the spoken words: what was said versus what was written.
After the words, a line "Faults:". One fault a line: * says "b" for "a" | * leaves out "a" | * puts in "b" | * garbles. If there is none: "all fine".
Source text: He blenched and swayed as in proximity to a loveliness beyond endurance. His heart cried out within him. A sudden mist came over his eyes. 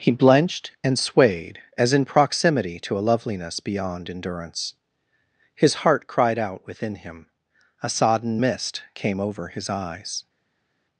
He blenched and swayed as in proximity to a loveliness beyond endurance. His heart cried out within him. A sodden mist came over his eyes.
Faults:
* says "sodden" for "sudden"